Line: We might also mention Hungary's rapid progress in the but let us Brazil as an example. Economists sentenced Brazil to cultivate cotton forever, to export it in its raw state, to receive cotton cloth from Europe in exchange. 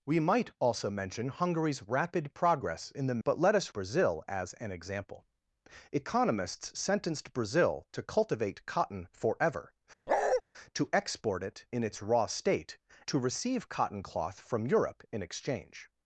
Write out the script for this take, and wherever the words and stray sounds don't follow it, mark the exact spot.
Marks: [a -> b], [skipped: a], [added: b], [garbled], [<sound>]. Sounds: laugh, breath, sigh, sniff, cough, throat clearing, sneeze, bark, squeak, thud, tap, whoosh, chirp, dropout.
We might also mention Hungary's rapid progress in the but let us Brazil as an example. Economists sentenced Brazil to cultivate cotton forever, [bark] to export it in its raw state, to receive cotton cloth from Europe in exchange.